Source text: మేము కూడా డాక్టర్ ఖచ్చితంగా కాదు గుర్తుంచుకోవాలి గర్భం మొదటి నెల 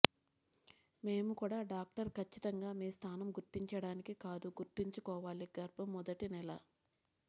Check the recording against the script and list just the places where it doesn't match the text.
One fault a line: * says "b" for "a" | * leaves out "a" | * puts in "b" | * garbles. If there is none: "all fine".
* puts in "మీ స్థానం గుర్తించడానికి"